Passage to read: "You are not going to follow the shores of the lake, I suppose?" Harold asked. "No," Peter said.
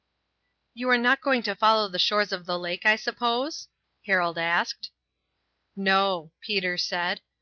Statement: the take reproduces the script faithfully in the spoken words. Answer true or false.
true